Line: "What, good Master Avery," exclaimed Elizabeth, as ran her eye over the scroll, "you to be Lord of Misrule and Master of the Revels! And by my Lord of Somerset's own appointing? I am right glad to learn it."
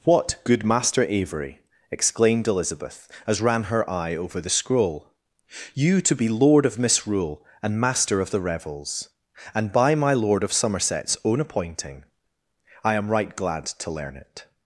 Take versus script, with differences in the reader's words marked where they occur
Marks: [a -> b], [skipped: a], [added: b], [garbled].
"What, good Master Avery," exclaimed Elizabeth, as ran her eye over the scroll, "you to be Lord of Misrule and Master of the Revels! And by my Lord of Somerset's own appointing? I am right glad to learn it."